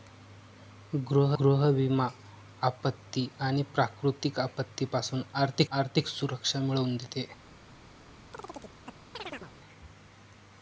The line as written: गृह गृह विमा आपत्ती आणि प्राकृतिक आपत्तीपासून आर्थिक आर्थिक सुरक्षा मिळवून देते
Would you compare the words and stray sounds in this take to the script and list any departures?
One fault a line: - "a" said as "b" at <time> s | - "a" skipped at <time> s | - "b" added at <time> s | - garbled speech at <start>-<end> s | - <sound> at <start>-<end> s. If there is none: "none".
- chirp at 8.3-9.5 s